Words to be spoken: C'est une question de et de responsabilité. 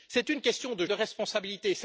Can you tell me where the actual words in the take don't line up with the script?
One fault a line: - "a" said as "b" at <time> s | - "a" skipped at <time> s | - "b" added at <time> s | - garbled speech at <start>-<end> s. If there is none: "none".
none